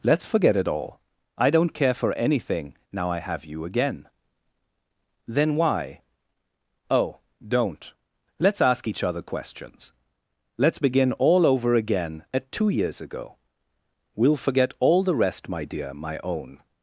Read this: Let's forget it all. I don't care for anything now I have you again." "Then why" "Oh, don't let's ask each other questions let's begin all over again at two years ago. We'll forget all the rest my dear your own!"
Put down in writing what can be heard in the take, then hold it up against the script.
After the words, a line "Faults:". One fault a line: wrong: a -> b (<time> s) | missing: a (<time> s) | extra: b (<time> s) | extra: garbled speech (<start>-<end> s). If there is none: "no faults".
Let's forget it all. I don't care for anything now I have you again." "Then why" "Oh, don't let's ask each other questions let's begin all over again at two years ago. We'll forget all the rest my dear my own!"
Faults:
wrong: your -> my (15.9 s)